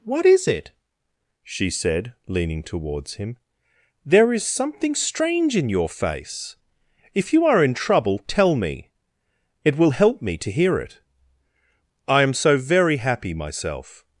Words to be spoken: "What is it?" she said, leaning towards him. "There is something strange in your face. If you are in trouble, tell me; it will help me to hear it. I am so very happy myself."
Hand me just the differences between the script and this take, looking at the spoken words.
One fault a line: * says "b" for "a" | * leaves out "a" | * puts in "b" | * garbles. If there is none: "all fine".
all fine